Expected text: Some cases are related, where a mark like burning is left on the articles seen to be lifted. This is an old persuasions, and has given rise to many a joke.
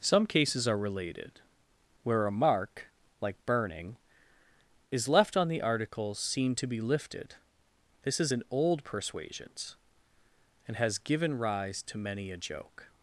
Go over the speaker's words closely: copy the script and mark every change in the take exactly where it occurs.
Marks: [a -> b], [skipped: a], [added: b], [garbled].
Some cases are related, where a mark like burning is left on the articles seen to be lifted. This is an old persuasions, and has given rise to many a joke.